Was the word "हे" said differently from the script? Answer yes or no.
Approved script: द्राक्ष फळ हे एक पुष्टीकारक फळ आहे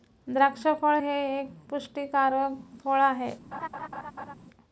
no